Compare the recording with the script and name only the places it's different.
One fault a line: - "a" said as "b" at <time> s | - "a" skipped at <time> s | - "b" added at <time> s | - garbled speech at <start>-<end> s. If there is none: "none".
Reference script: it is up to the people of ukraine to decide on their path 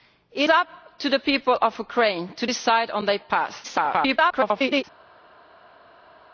- "is" skipped at 0.5 s
- garbled speech at 3.6-4.8 s